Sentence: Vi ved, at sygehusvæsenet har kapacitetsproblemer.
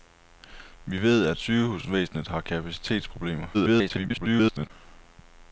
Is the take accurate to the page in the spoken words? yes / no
no